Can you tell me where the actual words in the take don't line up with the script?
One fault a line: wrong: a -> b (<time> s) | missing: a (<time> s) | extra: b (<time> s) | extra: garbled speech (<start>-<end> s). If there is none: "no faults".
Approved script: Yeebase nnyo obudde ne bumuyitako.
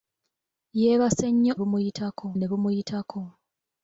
wrong: obudde -> bumuyitako (1.6 s)